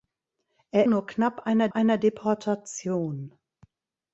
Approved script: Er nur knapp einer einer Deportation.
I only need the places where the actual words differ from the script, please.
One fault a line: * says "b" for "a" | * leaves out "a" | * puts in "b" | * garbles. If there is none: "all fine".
all fine